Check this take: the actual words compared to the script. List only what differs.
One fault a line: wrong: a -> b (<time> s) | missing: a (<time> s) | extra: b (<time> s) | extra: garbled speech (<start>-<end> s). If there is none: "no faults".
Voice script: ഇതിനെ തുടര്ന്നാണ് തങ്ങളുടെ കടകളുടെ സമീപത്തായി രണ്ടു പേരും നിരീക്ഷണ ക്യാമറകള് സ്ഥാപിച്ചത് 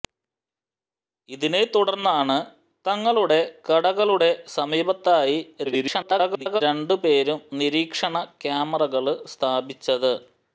extra: garbled speech (5.6-6.6 s)